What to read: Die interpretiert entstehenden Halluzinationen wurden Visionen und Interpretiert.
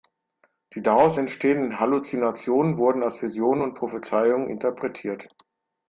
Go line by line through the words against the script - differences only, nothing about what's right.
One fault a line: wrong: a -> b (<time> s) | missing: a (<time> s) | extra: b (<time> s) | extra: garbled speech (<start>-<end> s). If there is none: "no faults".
wrong: interpretiert -> daraus (0.8 s)
extra: als (3.0 s)
extra: Prophezeiungen (3.8 s)